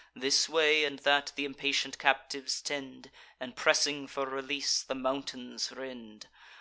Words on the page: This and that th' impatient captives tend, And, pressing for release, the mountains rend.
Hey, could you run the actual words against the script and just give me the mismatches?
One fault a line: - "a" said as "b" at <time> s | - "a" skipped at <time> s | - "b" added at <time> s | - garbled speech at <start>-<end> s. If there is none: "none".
- "way" added at 0.5 s